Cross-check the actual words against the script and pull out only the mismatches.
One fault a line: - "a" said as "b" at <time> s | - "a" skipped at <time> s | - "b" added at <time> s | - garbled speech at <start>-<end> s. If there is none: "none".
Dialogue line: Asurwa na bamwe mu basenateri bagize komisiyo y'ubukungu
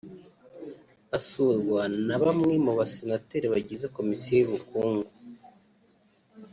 none